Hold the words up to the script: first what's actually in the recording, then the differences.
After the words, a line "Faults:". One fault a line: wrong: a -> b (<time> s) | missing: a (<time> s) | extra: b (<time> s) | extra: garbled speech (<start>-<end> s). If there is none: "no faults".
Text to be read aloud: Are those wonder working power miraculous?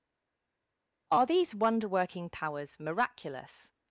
Are these wonder working powers miraculous?
Faults:
wrong: those -> these (1.2 s)
wrong: power -> powers (2.3 s)